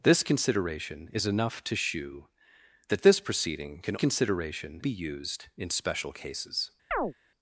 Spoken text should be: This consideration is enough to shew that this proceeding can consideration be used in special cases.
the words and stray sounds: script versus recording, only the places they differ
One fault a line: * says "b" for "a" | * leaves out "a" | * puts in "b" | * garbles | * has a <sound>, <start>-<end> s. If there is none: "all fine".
* has a chirp, 6.9-7.1 s